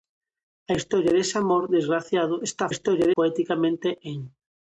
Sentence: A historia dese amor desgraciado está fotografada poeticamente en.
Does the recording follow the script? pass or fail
fail